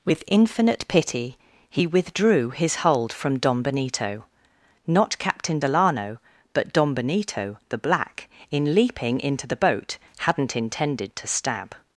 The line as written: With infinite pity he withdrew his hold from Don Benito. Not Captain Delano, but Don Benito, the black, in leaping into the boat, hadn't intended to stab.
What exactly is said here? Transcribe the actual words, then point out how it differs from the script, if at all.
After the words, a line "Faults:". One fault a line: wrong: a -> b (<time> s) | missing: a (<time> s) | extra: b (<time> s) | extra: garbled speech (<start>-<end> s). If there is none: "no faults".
With infinite pity he withdrew his hold from Don Benito. Not Captain Delano, but Don Benito, the black, in leaping into the boat, hadn't intended to stab.
Faults:
no faults